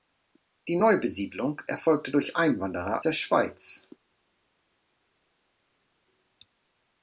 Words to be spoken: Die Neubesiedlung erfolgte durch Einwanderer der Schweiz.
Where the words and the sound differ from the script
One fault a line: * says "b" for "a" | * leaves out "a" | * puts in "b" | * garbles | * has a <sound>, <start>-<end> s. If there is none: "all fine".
all fine